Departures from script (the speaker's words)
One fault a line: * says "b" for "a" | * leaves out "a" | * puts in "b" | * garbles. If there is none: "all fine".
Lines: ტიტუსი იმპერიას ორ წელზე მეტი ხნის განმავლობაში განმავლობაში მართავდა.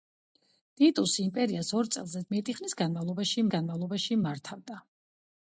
all fine